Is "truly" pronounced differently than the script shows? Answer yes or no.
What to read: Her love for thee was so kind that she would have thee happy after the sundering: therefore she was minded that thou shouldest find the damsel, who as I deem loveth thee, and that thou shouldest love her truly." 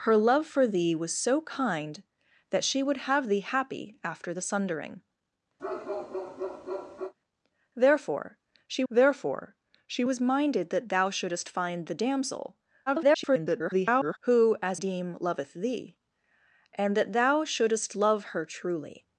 no